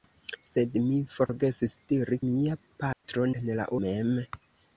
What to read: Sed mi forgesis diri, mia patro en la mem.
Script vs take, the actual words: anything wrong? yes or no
no